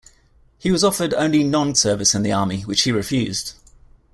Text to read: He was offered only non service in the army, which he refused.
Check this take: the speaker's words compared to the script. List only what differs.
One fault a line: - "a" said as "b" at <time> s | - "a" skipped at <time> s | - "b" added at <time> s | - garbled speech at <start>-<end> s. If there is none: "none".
none